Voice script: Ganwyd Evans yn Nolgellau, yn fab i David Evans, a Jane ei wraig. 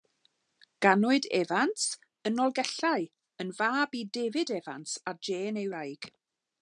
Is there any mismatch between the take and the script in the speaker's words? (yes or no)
no